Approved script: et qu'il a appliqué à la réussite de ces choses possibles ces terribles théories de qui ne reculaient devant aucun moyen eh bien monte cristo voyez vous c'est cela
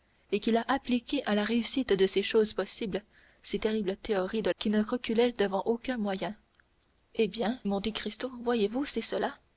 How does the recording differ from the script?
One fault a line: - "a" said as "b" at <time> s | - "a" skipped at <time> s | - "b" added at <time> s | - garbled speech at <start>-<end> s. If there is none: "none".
none